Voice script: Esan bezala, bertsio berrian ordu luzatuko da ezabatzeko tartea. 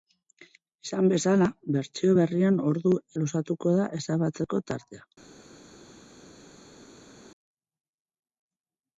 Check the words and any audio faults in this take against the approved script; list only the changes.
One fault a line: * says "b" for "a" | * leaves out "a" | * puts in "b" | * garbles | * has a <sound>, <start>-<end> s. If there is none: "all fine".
all fine